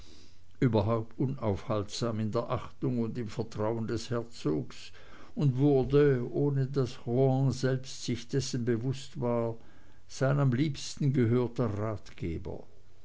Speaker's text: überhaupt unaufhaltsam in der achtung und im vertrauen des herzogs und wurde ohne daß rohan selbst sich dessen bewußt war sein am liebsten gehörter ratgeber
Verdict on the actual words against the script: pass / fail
pass